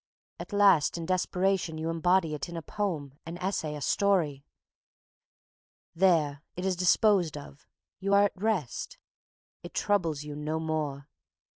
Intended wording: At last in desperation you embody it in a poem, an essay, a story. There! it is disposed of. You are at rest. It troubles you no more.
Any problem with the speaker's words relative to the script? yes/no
no